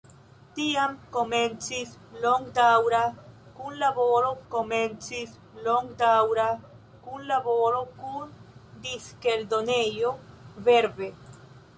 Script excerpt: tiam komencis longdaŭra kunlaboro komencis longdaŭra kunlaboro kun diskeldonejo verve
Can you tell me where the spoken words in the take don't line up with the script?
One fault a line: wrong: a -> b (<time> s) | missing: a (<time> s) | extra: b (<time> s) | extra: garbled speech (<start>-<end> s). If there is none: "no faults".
no faults